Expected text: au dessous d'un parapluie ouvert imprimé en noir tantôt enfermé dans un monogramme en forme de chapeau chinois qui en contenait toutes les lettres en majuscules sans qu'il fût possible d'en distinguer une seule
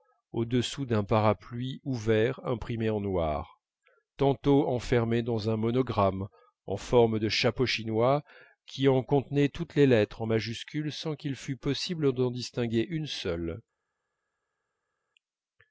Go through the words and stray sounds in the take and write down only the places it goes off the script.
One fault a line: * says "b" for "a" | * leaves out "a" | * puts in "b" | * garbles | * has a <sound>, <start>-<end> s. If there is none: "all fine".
all fine